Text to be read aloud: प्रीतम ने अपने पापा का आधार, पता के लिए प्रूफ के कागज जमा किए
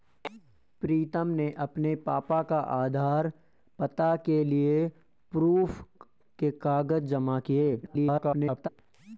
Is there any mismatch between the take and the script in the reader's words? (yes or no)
yes